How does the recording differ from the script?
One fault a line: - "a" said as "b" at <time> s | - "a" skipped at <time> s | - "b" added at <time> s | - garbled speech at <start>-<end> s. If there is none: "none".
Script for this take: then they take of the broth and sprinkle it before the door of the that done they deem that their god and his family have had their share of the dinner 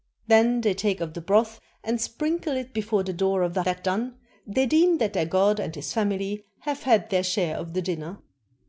none